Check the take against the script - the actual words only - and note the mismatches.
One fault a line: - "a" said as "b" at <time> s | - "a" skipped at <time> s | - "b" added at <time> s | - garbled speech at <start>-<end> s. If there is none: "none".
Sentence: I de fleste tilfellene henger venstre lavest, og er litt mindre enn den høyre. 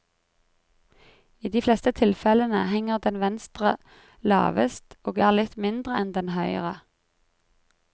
- "den" added at 3.1 s